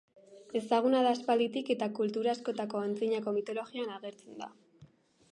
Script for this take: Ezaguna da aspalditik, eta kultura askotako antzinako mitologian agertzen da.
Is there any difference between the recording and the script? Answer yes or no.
no